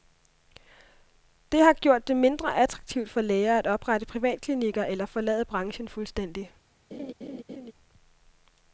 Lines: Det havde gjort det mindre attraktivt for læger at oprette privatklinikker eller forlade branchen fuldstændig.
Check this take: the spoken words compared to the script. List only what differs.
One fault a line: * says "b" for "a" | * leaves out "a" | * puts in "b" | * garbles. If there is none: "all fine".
* says "har" for "havde"